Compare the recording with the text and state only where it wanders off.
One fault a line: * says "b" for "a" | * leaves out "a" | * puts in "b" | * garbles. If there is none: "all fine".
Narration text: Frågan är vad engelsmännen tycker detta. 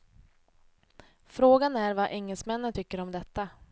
* puts in "om"